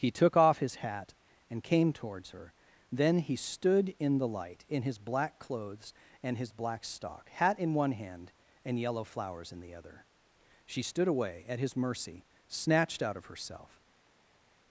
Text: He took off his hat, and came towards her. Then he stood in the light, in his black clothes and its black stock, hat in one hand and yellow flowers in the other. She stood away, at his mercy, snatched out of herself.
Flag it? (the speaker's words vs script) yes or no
yes